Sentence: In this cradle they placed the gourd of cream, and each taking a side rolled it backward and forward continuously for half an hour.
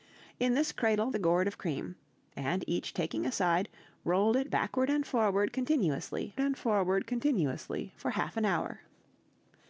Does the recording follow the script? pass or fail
fail